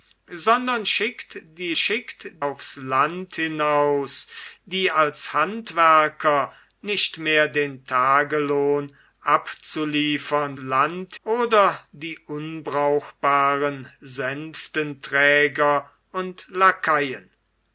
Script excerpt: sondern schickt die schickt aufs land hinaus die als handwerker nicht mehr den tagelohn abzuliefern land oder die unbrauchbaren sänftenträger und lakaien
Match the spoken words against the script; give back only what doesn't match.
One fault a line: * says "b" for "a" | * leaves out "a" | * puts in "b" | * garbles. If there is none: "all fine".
all fine